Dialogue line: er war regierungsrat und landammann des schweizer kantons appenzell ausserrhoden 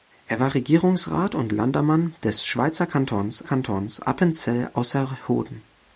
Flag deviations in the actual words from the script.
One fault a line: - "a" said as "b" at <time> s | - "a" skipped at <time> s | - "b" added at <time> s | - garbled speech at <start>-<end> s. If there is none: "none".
- "kantons" added at 3.4 s